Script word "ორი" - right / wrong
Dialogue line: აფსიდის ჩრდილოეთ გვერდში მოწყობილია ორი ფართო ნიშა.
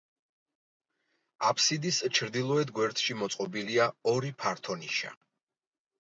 right